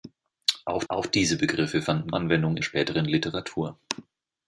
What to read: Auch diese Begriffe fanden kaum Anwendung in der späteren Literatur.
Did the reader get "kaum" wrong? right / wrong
wrong